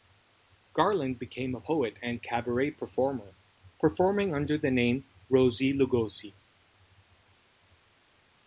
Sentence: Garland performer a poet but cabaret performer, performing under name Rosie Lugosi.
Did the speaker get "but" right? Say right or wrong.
wrong